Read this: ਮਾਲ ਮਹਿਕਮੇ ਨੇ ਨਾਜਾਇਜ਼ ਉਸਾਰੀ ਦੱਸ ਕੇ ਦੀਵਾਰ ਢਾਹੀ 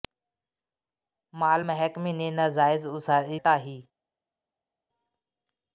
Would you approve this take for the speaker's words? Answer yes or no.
no